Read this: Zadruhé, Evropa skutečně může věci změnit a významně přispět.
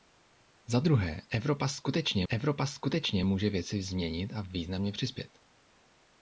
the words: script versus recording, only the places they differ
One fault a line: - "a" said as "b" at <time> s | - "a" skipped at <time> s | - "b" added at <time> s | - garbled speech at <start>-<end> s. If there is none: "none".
- "Evropa skutečně" added at 2.3 s